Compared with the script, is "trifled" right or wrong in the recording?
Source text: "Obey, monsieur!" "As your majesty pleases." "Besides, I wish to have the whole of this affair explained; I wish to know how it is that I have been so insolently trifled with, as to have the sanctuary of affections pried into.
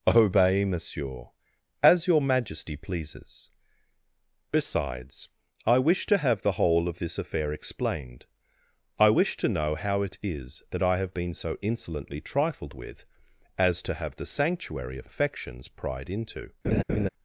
right